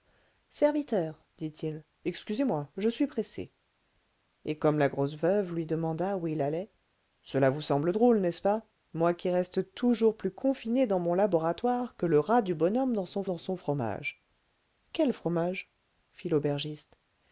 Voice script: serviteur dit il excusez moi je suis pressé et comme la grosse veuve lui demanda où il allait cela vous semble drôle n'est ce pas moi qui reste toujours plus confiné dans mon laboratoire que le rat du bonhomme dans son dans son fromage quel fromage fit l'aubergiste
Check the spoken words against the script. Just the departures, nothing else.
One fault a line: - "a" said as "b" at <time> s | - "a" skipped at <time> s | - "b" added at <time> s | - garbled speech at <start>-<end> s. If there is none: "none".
none